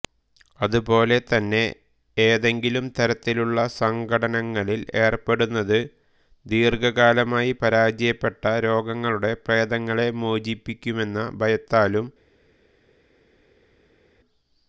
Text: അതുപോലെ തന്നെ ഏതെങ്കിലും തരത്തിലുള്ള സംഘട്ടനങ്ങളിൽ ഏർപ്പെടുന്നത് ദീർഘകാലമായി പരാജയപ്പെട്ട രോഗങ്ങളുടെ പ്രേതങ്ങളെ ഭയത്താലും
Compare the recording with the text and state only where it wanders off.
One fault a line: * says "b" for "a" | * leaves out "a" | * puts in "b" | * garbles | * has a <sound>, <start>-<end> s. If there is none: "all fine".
* puts in "മോചിപ്പിക്കുമെന്ന"